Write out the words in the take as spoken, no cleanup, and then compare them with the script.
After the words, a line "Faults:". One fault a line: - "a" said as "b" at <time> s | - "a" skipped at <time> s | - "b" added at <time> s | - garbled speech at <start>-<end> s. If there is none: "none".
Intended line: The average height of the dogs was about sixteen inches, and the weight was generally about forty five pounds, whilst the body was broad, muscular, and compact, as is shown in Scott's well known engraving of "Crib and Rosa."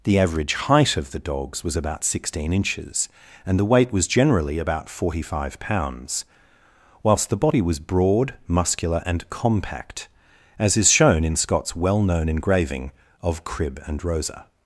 The average height of the dogs was about sixteen inches, and the weight was generally about forty five pounds, whilst the body was broad, muscular, and compact, as is shown in Scott's well known engraving of "Crib and Rosa."
Faults:
none